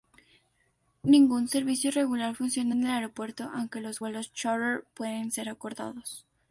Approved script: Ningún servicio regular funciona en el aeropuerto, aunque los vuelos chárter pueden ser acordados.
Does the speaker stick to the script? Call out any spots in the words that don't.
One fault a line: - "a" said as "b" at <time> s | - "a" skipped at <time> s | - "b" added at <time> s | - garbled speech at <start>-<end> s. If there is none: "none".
none